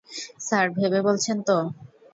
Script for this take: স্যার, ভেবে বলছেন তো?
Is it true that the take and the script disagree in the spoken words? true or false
false